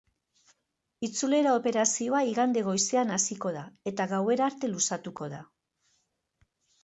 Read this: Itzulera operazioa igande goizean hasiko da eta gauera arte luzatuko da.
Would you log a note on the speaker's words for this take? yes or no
no